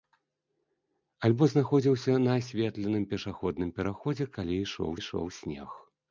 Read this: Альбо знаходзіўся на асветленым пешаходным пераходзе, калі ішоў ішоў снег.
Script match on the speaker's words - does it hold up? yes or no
yes